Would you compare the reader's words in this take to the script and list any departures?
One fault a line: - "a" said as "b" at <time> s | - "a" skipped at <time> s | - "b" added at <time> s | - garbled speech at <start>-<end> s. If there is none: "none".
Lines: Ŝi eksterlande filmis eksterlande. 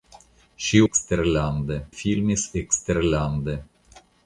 none